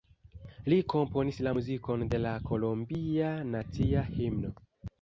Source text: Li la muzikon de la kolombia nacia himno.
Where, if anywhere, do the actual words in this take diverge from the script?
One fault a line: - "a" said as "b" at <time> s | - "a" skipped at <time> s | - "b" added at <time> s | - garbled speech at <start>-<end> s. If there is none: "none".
- "komponis" added at 0.9 s